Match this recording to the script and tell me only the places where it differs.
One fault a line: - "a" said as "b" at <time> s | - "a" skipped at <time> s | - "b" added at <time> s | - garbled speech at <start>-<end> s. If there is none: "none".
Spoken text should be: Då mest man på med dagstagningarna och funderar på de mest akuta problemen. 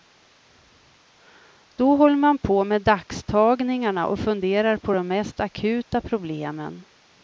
- "mest" said as "håller" at 1.9 s